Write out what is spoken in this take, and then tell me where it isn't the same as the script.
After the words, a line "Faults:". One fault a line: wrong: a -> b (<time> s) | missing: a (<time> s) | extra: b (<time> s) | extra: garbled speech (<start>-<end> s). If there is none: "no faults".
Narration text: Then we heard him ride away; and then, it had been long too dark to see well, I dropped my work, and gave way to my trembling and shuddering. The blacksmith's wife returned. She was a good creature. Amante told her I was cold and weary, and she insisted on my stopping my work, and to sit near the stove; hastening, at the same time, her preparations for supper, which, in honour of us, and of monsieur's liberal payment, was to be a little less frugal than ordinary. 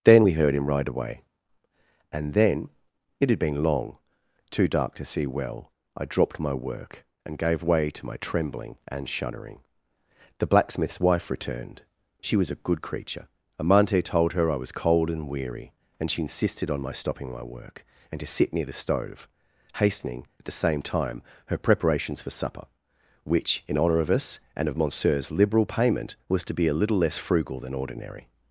Then we heard him ride away; and then, it had been long too dark to see well, I dropped my work, and gave way to my trembling and shuddering. The blacksmith's wife returned. She was a good creature. Amante told her I was cold and weary, and she insisted on my stopping my work, and to sit near the stove; hastening, at the same time, her preparations for supper, which, in honour of us, and of monsieur's liberal payment, was to be a little less frugal than ordinary.
Faults:
no faults